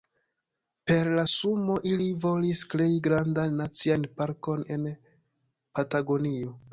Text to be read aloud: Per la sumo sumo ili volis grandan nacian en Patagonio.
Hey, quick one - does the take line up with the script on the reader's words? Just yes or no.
no